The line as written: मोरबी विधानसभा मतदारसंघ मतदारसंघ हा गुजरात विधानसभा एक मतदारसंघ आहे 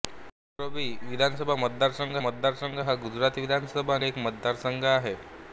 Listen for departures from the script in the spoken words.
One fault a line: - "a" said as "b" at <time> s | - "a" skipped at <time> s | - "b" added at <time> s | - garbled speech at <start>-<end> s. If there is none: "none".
none